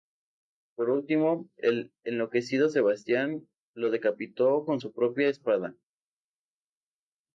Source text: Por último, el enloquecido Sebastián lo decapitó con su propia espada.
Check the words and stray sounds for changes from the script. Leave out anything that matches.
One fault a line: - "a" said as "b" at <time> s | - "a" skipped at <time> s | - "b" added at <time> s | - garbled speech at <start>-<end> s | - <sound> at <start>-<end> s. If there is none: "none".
none